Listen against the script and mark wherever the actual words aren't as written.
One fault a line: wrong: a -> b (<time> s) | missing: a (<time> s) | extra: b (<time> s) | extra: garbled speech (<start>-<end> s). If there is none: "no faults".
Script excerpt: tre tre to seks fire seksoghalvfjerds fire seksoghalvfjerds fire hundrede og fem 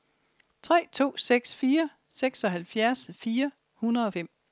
missing: tre (0.9 s)
missing: seksoghalvfjerds fire (3.5 s)